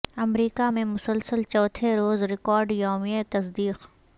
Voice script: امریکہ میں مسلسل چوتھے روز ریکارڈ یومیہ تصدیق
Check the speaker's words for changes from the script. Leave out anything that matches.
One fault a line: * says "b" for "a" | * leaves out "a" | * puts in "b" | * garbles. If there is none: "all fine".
all fine